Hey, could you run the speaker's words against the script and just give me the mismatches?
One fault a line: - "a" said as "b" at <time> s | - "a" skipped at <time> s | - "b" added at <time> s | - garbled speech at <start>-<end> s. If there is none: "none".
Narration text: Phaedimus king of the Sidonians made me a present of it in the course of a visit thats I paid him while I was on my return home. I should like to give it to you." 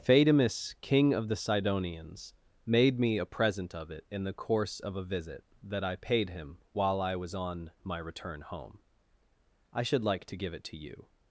- "thats" said as "that" at 5.6 s